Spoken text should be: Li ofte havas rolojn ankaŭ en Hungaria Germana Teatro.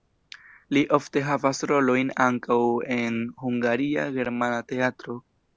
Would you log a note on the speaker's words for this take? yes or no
no